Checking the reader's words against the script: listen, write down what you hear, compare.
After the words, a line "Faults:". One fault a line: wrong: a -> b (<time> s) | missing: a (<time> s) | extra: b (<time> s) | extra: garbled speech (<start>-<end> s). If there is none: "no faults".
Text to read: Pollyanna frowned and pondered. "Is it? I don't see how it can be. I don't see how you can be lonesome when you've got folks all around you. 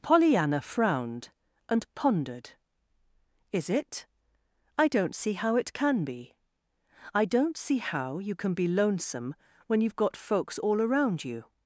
Pollyanna frowned and pondered. "Is it? I don't see how it can be. I don't see how you can be lonesome when you've got folks all around you.
Faults:
no faults